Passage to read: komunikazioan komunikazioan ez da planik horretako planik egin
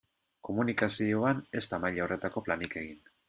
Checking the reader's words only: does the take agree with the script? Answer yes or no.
no